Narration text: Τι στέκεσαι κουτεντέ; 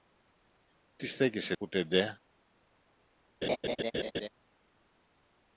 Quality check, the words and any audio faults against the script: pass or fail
fail